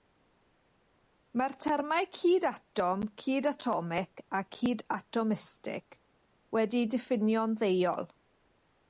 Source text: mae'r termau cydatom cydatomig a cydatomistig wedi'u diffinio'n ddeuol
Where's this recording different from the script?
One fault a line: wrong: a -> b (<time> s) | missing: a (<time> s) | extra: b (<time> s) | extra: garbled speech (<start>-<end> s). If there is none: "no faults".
no faults